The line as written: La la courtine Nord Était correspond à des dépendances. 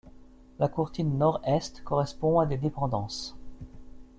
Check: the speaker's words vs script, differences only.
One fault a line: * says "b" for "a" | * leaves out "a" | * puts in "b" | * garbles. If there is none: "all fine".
* leaves out "la"
* says "Est" for "Était"